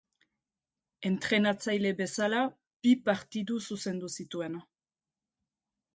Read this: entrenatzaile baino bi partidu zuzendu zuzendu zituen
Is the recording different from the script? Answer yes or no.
yes